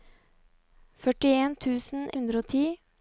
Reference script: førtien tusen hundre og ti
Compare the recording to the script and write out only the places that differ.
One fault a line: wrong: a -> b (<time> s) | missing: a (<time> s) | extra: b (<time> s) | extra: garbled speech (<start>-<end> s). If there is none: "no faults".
no faults